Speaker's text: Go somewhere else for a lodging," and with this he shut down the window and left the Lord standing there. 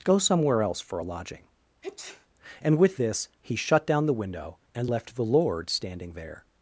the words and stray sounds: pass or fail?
fail